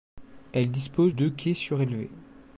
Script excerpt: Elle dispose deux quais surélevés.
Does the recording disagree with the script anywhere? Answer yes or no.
no